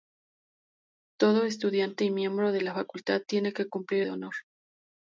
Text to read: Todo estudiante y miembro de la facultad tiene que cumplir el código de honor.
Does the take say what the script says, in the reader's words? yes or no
no